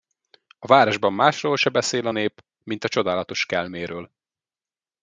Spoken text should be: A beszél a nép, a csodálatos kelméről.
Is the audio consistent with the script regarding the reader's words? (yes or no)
no